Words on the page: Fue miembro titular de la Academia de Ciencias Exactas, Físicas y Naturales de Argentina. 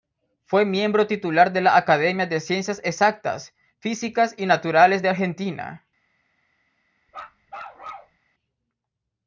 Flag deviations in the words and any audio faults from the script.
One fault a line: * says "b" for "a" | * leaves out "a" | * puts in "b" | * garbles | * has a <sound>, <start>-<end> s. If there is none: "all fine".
* has a bark, 7.1-8.2 s